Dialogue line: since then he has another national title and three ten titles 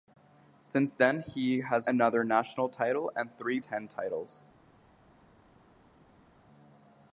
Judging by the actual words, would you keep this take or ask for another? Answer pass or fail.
pass